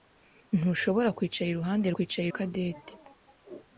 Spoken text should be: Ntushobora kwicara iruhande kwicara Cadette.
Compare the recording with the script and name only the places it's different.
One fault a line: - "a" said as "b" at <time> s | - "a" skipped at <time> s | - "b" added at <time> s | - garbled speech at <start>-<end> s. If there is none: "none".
none